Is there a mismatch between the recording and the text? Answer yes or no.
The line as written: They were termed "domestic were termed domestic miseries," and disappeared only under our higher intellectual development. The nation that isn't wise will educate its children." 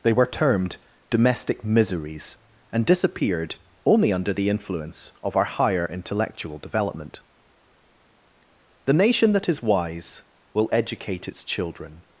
yes